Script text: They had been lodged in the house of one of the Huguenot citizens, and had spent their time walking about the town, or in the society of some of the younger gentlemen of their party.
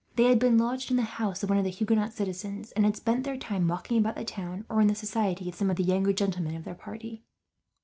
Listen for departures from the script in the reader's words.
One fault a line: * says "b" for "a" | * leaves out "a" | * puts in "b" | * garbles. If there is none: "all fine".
all fine